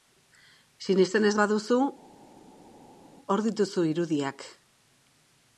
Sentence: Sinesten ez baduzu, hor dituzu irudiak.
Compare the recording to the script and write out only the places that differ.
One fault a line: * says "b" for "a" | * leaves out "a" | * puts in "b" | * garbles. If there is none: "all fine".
all fine